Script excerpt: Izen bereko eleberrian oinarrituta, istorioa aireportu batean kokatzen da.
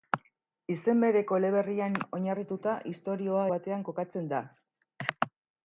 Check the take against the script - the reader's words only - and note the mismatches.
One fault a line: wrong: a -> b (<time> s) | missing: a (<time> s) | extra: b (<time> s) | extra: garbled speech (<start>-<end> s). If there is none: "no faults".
missing: aireportu (3.4 s)